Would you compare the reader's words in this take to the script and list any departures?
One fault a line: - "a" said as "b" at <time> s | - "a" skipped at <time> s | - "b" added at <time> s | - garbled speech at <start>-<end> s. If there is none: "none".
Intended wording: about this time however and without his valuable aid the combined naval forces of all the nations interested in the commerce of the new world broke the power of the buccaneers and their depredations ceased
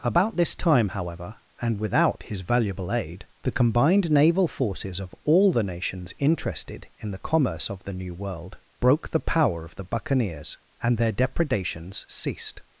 none